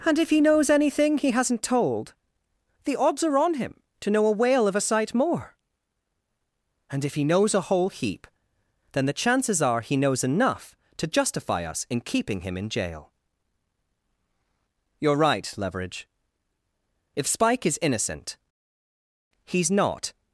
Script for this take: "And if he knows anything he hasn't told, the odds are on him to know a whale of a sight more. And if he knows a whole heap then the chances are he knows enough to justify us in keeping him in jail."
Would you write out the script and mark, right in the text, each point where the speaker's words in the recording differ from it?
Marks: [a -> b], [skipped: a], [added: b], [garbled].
"And if he knows anything he hasn't told, the odds are on him to know a whale of a sight more. And if he knows a whole heap then the chances are he knows enough to justify us in keeping him in jail." [added: You're right Leverage If Spike is innocent he's not]